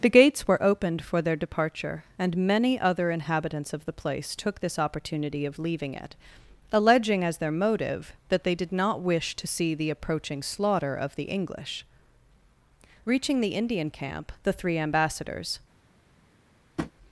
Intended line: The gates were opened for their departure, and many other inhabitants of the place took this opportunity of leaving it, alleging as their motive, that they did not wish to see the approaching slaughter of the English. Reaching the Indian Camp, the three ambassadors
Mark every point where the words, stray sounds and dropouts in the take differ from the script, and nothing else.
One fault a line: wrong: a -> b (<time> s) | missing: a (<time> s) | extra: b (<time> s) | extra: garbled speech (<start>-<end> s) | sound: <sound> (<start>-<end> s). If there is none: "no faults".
sound: tap (16.8-16.9 s)